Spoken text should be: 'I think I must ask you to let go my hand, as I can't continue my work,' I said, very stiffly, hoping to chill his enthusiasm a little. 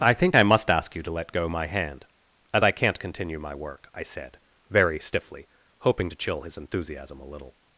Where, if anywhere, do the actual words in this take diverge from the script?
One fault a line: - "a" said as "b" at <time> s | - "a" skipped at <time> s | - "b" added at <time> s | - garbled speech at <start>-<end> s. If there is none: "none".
none